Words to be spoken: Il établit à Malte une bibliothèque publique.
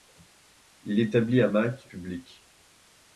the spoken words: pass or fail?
fail